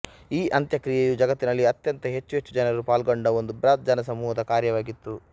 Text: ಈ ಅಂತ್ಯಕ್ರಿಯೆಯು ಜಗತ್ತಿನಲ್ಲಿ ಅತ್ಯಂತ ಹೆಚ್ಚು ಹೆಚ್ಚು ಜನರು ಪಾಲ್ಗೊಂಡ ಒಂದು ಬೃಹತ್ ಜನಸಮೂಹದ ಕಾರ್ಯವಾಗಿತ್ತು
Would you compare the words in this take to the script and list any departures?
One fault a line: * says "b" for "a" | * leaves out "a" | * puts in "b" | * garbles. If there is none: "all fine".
all fine